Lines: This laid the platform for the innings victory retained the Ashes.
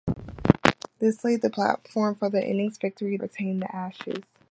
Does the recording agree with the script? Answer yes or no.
yes